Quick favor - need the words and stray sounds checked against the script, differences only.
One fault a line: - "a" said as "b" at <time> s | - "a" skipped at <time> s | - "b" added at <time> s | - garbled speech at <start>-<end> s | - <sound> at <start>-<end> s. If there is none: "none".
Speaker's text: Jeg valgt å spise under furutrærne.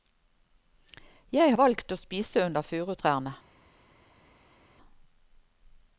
none